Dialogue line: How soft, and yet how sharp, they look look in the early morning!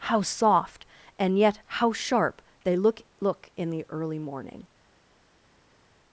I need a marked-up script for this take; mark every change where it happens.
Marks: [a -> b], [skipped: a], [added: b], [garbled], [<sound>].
How soft, and yet how sharp, they look look in the early morning!